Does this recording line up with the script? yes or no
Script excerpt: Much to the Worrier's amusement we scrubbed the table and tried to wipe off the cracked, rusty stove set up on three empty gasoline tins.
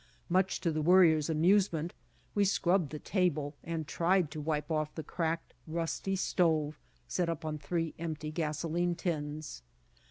yes